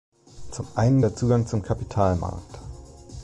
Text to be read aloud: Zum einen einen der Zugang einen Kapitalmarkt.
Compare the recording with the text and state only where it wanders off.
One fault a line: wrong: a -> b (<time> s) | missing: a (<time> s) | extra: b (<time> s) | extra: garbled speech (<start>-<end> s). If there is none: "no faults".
missing: einen (1.0 s)
wrong: einen -> zum (1.5 s)